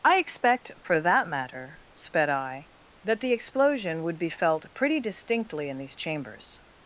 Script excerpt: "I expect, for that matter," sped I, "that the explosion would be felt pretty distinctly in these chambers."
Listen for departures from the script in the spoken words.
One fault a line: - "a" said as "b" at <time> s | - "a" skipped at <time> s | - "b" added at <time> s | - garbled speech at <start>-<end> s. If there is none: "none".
none